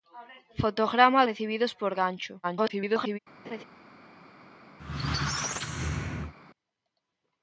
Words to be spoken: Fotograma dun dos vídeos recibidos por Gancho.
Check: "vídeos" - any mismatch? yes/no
yes